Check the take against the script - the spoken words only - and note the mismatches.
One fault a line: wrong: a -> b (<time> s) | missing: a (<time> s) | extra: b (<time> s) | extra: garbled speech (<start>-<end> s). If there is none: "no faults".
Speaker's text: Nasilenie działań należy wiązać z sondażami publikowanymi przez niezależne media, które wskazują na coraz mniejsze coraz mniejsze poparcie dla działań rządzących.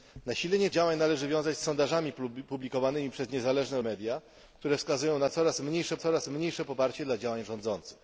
no faults